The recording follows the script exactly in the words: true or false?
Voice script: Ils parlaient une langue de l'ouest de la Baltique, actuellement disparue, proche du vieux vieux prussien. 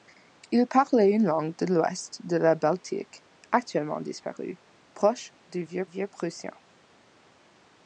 true